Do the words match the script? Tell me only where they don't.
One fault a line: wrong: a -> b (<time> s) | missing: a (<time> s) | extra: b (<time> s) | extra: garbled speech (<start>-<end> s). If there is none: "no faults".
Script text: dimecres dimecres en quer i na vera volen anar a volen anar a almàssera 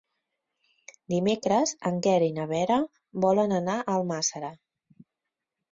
missing: dimecres (1.7 s)
missing: volen anar a (4.0 s)